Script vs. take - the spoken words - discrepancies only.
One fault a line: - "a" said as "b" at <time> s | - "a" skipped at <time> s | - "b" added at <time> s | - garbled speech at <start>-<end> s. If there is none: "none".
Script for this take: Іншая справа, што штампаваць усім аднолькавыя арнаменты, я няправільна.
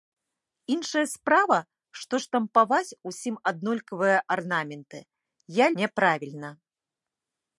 none